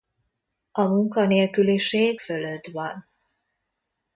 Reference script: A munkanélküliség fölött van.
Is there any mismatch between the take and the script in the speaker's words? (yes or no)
no